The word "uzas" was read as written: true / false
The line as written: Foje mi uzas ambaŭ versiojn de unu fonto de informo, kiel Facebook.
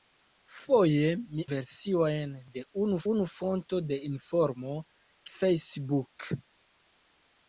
false